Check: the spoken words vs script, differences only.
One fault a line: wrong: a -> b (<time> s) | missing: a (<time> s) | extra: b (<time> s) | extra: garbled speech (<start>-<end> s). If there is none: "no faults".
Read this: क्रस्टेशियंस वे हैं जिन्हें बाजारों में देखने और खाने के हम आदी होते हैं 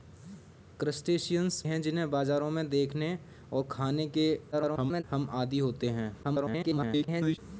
missing: वे (1.6 s)
extra: garbled speech (4.5-5.0 s)
extra: garbled speech (6.2-7.4 s)